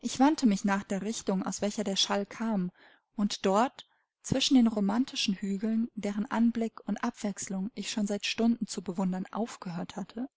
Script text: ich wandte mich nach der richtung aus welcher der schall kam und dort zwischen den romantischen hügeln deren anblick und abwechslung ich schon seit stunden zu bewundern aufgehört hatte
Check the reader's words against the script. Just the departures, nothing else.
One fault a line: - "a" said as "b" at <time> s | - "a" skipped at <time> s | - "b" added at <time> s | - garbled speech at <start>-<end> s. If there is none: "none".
none